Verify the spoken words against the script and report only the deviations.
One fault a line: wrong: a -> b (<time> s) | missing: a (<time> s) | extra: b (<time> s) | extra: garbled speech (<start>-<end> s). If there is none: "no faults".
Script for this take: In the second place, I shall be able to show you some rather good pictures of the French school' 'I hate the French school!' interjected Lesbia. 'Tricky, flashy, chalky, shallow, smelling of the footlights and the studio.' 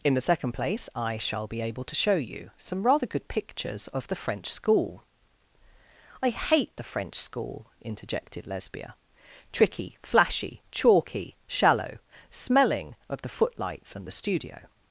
no faults